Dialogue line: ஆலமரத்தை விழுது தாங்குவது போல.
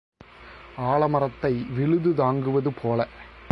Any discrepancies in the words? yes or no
no